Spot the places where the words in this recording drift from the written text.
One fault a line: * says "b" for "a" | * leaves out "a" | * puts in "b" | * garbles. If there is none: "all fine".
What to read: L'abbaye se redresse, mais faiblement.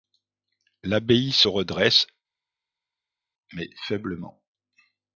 all fine